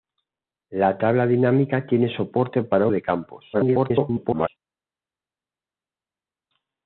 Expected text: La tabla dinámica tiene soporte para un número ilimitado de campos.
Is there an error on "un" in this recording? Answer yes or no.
yes